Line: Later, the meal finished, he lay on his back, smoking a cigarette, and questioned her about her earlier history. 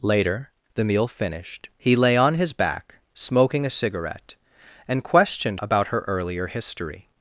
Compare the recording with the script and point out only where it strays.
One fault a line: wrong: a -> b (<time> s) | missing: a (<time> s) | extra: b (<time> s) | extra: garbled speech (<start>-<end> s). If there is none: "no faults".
missing: her (5.6 s)